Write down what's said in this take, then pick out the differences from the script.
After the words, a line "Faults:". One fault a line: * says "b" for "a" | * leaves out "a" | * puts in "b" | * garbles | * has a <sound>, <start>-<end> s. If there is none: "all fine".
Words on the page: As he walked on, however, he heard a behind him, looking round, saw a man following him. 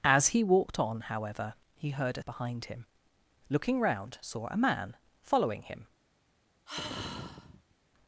As he walked on, however, he heard a behind him, looking round, saw a man following him.
Faults:
* has a sigh, 6.7-7.7 s